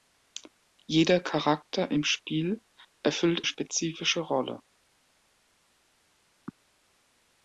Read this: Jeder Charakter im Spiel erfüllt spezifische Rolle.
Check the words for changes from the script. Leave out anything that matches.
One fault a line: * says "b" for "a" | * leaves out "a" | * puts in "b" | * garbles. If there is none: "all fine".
all fine